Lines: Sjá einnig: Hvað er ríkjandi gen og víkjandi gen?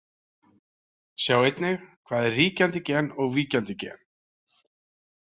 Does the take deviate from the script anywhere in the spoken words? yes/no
no